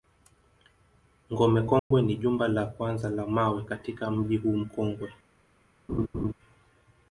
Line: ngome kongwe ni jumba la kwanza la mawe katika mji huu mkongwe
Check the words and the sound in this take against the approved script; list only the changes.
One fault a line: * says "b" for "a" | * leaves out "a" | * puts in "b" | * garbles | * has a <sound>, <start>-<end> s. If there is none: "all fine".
* has a dropout, 1.8-1.9 s
* has a laugh, 5.9-6.3 s